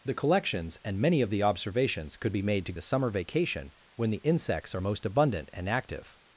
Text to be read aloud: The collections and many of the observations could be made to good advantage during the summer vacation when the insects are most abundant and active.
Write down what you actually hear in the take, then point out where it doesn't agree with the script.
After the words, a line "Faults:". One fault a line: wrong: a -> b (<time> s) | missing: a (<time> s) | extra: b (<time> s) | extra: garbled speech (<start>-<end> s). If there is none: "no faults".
The collections and many of the observations could be made to the summer vacation when the insects are most abundant and active.
Faults:
missing: good advantage during (2.7 s)